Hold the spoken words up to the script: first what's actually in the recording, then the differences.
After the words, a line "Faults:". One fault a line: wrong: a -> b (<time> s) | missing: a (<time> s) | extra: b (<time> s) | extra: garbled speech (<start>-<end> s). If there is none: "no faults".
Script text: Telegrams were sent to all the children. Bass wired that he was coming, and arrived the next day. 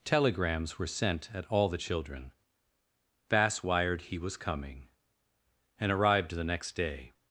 Telegrams were sent at all the children. Bass wired he was coming, and arrived the next day.
Faults:
wrong: to -> at (1.3 s)
missing: that (4.0 s)